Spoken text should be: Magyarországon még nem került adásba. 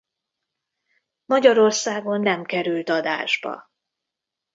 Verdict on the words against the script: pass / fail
fail